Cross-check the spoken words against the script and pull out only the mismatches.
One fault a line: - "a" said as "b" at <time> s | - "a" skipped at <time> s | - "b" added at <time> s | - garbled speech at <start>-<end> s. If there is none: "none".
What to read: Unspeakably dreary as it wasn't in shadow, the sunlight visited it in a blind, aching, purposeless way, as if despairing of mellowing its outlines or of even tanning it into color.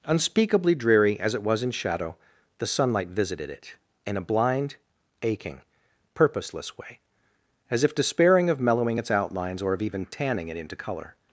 - "wasn't" said as "was" at 1.4 s